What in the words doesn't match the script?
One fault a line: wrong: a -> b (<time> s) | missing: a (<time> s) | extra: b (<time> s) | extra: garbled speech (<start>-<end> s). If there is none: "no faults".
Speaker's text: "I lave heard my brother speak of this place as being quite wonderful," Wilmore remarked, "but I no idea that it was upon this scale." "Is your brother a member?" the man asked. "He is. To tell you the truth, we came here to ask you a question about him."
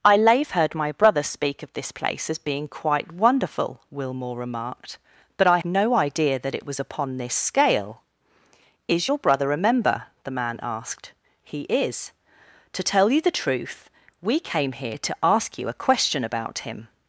no faults